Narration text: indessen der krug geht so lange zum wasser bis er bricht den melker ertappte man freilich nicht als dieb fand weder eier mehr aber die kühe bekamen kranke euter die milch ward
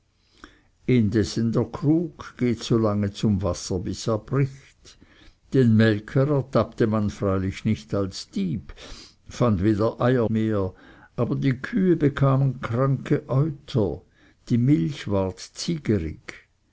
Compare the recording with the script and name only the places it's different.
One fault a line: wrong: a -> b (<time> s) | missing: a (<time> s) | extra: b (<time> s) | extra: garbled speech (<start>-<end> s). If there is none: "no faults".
no faults